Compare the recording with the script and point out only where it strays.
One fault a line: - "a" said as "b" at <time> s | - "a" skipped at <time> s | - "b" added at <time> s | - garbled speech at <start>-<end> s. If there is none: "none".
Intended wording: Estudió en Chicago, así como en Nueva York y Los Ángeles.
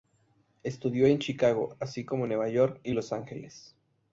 none